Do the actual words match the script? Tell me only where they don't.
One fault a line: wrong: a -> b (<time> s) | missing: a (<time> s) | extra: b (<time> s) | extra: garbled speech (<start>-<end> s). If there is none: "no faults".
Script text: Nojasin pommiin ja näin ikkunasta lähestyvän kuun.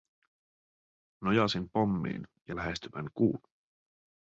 missing: näin ikkunasta (2.5 s)